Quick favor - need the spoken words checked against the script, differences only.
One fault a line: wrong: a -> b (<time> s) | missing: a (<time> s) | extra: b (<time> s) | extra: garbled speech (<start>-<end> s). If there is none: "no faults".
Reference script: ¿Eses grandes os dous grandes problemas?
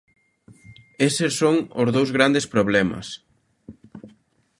wrong: grandes -> son (1.4 s)